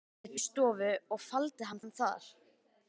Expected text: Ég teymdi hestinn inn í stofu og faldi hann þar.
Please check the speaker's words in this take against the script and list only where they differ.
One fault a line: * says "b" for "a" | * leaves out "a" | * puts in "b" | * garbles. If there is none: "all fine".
* leaves out "teymdi hestinn inn"
* puts in "hann"